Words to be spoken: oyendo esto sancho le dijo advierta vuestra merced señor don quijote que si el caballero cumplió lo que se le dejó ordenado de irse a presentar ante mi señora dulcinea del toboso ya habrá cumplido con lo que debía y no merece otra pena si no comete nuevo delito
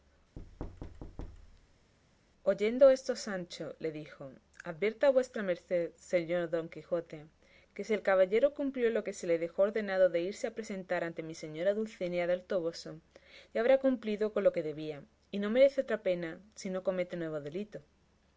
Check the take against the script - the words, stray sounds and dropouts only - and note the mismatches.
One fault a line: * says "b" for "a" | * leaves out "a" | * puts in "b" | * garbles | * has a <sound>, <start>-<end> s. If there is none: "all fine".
* has a thud, 0.4-1.9 s